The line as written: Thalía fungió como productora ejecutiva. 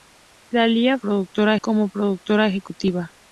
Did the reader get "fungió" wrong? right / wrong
wrong